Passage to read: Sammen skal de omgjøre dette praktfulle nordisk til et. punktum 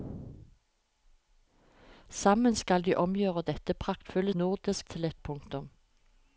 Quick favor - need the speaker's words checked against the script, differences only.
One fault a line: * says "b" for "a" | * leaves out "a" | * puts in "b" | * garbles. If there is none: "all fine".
all fine